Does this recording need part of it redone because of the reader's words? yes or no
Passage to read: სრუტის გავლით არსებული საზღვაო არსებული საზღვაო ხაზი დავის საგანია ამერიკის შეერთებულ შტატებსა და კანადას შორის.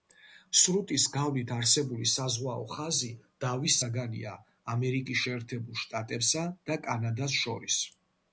yes